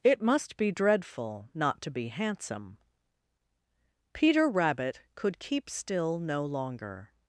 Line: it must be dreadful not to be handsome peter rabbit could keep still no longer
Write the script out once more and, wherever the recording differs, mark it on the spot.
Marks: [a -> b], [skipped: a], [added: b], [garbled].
it must be dreadful not to be handsome peter rabbit could keep still no longer